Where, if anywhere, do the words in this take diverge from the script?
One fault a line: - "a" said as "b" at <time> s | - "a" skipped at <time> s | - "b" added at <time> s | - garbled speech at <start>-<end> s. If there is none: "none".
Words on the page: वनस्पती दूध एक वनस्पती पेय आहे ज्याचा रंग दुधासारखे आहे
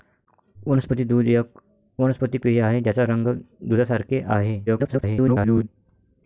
- garbled speech at 4.7-5.7 s